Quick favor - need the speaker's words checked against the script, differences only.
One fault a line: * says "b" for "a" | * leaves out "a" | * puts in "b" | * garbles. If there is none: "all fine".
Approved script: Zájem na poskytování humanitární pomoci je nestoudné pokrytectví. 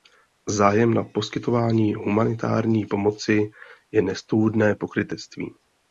all fine